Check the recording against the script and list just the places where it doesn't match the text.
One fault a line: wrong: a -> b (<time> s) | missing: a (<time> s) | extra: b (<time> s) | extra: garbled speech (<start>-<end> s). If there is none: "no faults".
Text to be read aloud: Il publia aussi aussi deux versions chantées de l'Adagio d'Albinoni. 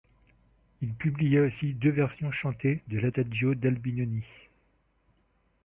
missing: aussi (1.8 s)